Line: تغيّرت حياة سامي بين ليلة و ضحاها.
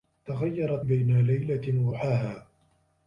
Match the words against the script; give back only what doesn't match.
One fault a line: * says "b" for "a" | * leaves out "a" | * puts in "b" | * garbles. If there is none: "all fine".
* leaves out "حياة سامي"
* leaves out "و"